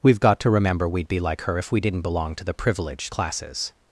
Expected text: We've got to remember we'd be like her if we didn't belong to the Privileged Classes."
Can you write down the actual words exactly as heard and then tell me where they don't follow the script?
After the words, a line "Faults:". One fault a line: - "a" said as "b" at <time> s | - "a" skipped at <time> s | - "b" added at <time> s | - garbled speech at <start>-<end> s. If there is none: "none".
We've got to remember we'd be like her if we didn't belong to the Privileged Classes."
Faults:
none